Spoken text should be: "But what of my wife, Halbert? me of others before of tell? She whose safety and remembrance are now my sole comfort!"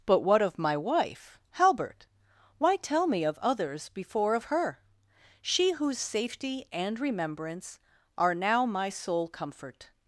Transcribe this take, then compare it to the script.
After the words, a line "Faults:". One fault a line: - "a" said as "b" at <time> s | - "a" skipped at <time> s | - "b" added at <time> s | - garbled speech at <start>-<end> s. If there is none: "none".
"But what of my wife, Halbert? why tell me of others before of her? She whose safety and remembrance are now my sole comfort!"
Faults:
- "why tell" added at 2.6 s
- "tell" said as "her" at 4.4 s